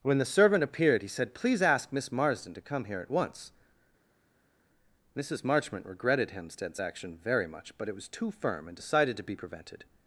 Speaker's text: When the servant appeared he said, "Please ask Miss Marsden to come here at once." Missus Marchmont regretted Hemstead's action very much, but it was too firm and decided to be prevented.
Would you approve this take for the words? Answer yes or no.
yes